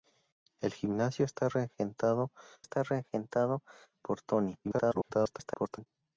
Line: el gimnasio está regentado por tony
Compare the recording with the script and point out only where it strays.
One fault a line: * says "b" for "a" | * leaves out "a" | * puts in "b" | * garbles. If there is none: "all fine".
* puts in "está regentado"
* garbles